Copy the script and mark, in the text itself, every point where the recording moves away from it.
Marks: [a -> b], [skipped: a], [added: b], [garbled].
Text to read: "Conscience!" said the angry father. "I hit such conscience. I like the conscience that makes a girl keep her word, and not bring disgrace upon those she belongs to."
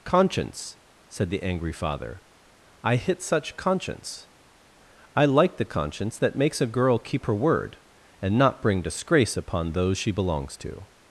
"Conscience!" said the angry father. "I hit such conscience. I like the conscience that makes a girl keep her word, and not bring disgrace upon those she belongs to."